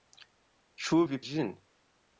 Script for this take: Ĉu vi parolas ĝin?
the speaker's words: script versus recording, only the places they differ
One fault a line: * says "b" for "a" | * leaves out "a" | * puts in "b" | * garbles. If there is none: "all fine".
* leaves out "parolas"